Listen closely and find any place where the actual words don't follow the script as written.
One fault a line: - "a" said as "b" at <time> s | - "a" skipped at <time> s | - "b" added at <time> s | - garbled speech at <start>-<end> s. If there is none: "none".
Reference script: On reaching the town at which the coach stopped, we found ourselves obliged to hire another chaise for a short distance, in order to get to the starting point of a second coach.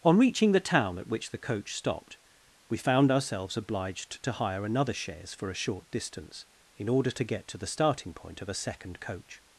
none